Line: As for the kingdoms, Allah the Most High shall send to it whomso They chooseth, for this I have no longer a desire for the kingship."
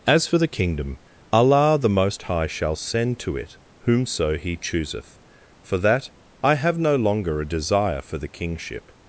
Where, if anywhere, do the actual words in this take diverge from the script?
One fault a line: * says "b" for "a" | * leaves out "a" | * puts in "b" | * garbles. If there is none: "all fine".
* says "kingdom" for "kingdoms"
* says "He" for "They"
* says "that" for "this"